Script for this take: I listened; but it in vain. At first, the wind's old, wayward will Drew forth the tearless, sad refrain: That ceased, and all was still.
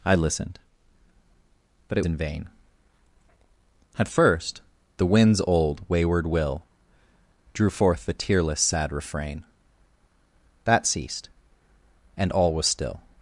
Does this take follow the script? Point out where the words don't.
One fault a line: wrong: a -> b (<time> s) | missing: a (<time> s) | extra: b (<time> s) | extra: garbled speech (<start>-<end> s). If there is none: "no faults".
no faults